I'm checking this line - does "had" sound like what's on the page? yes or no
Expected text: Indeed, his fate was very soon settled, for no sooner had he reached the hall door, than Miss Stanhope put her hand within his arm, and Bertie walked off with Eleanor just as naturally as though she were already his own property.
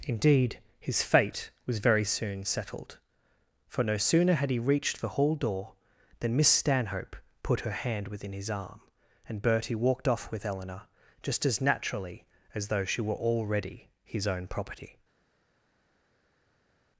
yes